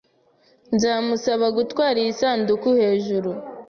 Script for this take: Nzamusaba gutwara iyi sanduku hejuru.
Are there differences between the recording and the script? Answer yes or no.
no